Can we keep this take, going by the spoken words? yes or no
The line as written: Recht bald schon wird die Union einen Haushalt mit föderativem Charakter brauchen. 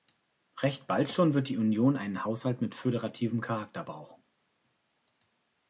yes